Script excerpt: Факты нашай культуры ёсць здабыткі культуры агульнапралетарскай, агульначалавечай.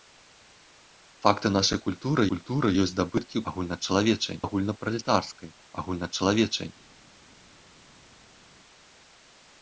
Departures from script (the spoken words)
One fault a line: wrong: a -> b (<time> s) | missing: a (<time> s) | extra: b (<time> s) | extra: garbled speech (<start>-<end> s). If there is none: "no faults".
extra: культуры (2.3 s)
wrong: культуры -> агульначалавечай (3.5 s)